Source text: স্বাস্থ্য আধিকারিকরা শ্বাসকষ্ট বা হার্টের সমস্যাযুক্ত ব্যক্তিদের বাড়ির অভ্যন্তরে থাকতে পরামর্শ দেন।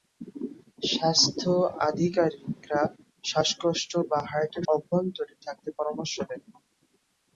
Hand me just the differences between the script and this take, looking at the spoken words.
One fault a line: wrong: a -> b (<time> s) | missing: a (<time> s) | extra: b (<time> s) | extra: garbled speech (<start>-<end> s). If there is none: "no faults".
missing: সমস্যাযুক্ত ব্যক্তিদের বাড়ির (4.7 s)